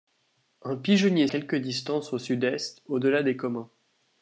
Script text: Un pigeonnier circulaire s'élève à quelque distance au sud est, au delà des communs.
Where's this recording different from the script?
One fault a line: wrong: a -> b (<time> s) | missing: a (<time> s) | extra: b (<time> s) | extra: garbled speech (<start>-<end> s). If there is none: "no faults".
missing: circulaire s'élève à (1.3 s)